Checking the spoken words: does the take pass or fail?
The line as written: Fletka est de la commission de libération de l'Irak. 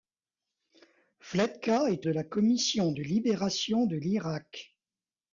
pass